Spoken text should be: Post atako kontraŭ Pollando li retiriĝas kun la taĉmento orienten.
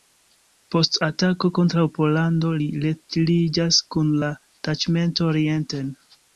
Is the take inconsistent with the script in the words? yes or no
no